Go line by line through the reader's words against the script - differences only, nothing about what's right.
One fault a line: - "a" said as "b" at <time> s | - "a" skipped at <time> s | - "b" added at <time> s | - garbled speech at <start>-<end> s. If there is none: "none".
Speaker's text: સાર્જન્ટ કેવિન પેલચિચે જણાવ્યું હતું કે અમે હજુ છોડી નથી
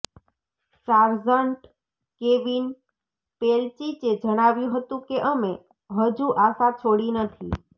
- "આશા" added at 6.4 s